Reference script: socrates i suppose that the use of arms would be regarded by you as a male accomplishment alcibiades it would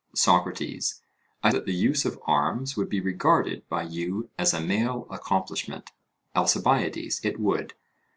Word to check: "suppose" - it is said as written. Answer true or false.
false